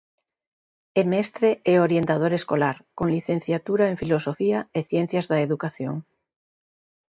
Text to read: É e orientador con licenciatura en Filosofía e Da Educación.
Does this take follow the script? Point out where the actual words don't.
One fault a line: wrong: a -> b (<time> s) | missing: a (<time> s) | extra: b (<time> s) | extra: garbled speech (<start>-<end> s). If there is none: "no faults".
extra: mestre (1.1 s)
extra: escolar (2.4 s)
extra: Ciencias (4.9 s)